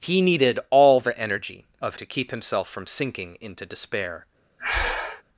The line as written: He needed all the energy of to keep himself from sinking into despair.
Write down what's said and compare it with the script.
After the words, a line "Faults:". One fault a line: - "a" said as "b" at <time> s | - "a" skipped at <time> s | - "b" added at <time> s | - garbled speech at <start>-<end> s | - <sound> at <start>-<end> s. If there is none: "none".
He needed all the energy of to keep himself from sinking into despair.
Faults:
- breath at 4.6-5.2 s